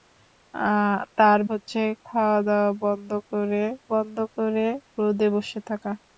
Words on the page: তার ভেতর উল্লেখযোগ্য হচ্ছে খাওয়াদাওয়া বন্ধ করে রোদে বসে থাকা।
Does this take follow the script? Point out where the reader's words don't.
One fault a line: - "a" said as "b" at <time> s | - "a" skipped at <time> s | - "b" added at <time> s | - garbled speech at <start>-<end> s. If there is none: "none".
- "ভেতর উল্লেখযোগ্য হচ্ছে খাওয়াদাওয়া" said as "হচ্ছে খাওয়াদাওয়া বন্ধ করে" at 1.5 s